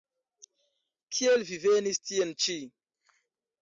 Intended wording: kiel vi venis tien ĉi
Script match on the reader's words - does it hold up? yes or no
yes